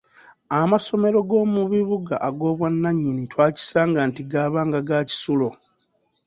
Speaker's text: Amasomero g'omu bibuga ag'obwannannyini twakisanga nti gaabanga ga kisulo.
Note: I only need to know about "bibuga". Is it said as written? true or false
true